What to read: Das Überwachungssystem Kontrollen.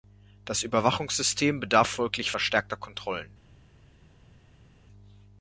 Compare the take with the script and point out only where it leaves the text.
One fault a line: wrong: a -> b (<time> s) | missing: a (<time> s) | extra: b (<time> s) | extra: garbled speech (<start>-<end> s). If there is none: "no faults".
extra: bedarf folglich verstärkter (1.6 s)